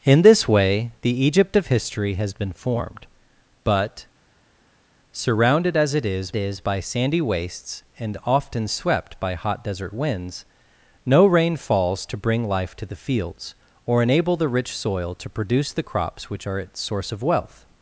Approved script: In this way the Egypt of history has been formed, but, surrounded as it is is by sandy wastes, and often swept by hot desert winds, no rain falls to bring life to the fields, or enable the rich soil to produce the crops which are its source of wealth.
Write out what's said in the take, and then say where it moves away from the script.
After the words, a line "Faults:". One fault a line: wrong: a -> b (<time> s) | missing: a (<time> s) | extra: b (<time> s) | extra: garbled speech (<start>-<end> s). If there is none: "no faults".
In this way the Egypt of history has been formed, but, surrounded as it is is by sandy wastes, and often swept by hot desert winds, no rain falls to bring life to the fields, or enable the rich soil to produce the crops which are its source of wealth.
Faults:
no faults